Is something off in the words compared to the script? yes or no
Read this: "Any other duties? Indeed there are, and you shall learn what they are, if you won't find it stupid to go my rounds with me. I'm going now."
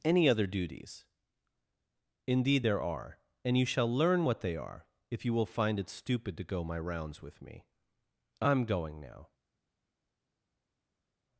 yes